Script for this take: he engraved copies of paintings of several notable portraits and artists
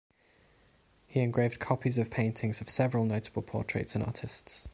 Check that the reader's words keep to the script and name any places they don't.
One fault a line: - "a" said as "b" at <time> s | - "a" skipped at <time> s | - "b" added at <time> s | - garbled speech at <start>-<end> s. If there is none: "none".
none